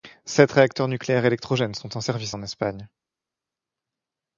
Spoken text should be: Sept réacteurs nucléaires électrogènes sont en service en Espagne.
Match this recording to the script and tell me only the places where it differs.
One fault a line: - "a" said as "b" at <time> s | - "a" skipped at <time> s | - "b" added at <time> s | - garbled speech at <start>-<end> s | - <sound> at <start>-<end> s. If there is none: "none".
none